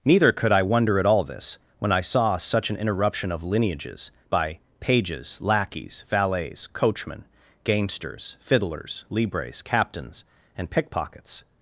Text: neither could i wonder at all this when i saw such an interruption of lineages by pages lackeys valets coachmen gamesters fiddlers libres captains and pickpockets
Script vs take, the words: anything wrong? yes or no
no